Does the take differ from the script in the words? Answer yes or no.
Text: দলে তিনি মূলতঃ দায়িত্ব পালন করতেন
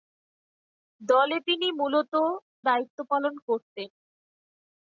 no